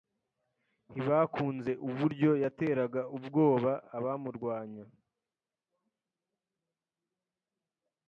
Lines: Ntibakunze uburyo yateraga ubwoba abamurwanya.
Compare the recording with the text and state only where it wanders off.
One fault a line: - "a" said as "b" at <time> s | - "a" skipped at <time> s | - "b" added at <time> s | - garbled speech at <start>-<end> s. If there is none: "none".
none